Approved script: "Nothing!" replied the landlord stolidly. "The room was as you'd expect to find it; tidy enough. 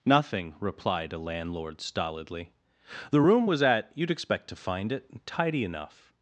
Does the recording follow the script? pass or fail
fail